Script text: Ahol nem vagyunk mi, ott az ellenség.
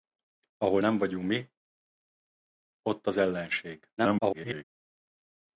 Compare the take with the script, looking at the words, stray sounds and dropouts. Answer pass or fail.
fail